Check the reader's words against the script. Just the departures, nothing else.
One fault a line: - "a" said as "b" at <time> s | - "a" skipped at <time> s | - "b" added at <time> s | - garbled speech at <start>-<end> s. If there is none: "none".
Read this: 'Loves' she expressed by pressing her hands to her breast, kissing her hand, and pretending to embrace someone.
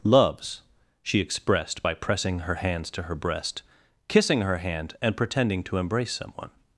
none